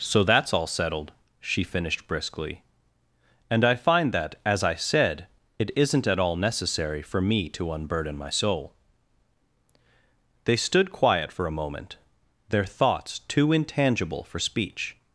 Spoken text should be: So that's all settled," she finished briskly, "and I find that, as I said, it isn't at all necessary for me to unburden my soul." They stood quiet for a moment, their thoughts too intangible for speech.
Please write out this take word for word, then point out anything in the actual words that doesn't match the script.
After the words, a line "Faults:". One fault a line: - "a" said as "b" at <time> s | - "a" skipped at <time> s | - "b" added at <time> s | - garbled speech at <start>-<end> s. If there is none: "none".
So that's all settled," she finished briskly, "and I find that, as I said, it isn't at all necessary for me to unburden my soul." They stood quiet for a moment, their thoughts too intangible for speech.
Faults:
none